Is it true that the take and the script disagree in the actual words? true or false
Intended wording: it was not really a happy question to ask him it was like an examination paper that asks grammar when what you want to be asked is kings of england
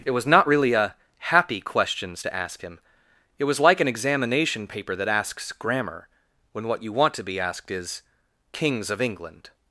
true